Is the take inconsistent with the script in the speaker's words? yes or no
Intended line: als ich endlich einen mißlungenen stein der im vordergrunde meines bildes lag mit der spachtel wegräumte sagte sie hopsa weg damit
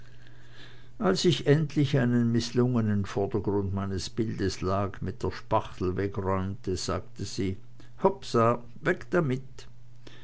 yes